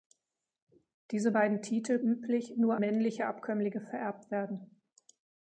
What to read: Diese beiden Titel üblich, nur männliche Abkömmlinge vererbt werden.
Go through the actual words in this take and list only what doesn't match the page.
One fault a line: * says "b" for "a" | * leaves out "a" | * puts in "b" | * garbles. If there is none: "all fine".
all fine